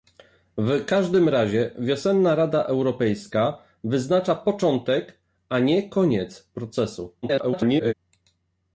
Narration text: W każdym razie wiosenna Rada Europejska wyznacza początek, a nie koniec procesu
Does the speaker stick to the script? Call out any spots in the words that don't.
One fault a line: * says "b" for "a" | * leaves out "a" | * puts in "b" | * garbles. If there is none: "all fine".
* garbles